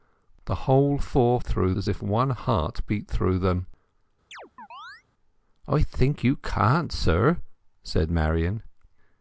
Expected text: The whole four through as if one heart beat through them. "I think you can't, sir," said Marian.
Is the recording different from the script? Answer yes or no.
no